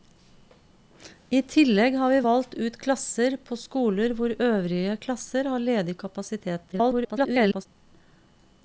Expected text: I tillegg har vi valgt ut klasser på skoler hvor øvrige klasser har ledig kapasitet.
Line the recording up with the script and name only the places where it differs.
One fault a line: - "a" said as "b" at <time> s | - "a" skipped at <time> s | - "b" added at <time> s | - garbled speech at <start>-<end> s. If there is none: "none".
- garbled speech at 6.7-7.7 s